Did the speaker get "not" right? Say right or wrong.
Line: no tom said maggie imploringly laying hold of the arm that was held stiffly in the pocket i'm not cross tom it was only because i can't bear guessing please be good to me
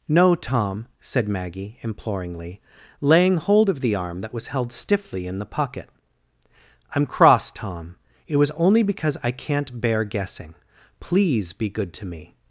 wrong